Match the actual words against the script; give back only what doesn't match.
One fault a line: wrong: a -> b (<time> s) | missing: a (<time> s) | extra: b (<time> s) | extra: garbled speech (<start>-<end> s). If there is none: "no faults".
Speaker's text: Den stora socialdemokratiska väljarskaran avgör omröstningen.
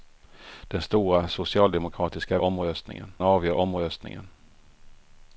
wrong: väljarskaran -> omröstningen (2.4 s)